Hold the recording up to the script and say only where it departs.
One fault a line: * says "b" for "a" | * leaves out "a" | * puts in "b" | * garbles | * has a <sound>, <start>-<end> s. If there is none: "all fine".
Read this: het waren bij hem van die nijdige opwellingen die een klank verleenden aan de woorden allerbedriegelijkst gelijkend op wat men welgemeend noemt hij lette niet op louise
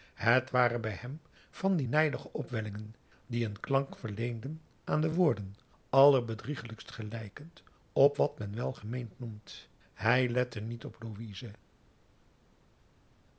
all fine